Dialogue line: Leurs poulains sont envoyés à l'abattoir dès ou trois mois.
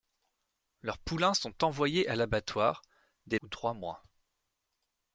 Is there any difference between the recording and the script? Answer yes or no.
no